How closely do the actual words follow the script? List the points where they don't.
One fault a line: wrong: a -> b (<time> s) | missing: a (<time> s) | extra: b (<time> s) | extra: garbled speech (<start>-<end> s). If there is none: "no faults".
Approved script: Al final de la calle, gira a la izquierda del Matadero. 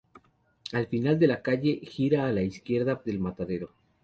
no faults